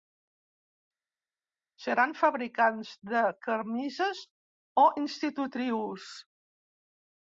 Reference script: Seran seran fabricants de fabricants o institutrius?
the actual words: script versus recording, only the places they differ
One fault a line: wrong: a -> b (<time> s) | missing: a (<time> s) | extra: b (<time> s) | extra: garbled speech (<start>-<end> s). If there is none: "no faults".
missing: seran (2.1 s)
wrong: fabricants -> camises (3.5 s)